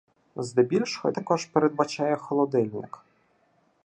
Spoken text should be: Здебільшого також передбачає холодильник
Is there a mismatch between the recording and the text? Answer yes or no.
no